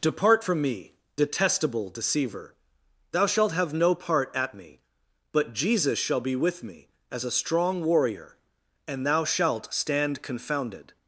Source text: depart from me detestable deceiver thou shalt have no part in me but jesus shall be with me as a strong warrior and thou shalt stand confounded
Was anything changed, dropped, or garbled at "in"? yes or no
yes